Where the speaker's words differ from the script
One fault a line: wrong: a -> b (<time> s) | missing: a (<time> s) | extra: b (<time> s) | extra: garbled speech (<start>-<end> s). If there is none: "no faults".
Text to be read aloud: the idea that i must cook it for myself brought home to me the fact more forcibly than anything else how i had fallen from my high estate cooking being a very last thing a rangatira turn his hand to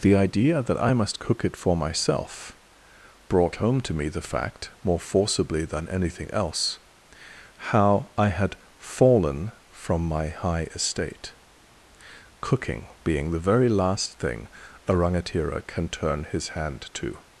wrong: a -> the (13.3 s)
extra: can (15.6 s)